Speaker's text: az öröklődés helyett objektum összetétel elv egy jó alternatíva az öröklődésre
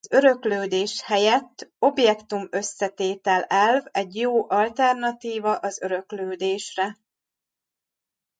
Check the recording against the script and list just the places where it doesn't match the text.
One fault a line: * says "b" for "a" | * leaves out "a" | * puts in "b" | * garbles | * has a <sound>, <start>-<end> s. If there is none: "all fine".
all fine